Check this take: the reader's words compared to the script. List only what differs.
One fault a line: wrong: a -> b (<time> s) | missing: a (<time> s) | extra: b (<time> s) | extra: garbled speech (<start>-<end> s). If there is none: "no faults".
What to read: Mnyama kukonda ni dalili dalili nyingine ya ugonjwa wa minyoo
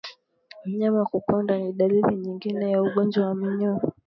missing: dalili (2.1 s)